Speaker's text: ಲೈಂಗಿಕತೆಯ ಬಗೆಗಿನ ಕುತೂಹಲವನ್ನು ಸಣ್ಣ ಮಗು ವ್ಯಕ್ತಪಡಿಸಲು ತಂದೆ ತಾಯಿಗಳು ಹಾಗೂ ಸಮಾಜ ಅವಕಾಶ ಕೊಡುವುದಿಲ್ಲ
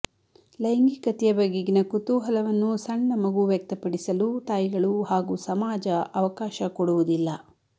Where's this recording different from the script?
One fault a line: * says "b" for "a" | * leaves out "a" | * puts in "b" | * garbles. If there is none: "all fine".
* leaves out "ತಂದೆ"